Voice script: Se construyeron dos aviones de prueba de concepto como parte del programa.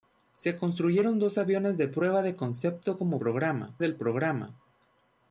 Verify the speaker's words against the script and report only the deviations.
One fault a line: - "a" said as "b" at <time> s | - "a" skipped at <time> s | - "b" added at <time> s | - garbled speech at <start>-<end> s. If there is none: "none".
- "parte" said as "programa" at 3.2 s